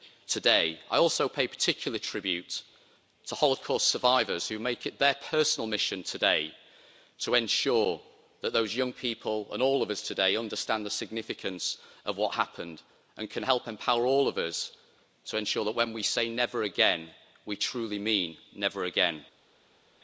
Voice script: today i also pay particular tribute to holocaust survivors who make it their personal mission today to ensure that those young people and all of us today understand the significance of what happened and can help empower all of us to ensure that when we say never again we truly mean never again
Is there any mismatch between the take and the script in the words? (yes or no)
no